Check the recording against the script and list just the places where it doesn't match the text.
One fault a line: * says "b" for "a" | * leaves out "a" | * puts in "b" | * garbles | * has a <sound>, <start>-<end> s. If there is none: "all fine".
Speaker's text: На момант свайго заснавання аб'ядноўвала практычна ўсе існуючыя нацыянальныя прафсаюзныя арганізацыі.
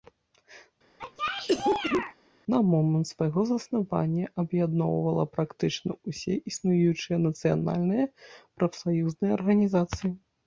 * has a cough, 1.0-2.1 s